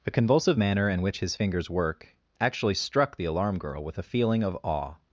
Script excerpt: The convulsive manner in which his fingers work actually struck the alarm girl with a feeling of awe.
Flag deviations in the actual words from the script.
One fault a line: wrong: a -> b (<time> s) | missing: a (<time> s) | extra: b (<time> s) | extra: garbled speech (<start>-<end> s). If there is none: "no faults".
no faults